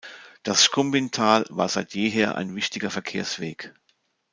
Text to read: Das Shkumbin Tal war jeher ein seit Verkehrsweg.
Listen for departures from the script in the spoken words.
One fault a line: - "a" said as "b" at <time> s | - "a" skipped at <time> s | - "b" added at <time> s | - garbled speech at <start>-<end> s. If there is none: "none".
- "seit" added at 1.7 s
- "seit" said as "wichtiger" at 2.6 s